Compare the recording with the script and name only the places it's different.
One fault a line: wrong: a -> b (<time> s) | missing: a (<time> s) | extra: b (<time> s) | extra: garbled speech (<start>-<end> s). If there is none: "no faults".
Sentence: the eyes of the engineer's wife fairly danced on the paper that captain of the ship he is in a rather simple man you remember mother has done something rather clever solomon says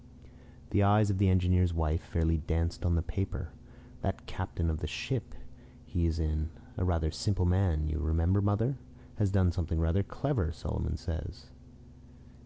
no faults